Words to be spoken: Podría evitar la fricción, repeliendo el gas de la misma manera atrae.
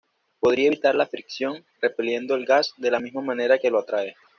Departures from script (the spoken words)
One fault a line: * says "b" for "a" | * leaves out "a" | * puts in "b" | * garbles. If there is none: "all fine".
* puts in "que lo"